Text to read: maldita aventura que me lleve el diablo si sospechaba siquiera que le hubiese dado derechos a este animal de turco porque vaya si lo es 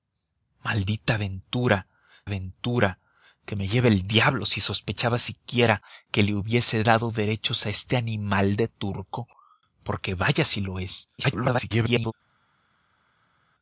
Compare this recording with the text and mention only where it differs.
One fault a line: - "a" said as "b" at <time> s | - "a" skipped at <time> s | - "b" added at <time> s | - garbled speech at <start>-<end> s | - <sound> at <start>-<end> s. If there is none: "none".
- "aventura" added at 2.2 s
- garbled speech at 11.2-12.1 s